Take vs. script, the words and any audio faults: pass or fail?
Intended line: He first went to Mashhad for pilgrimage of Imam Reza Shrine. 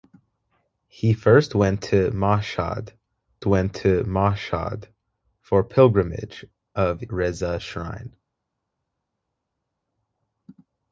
fail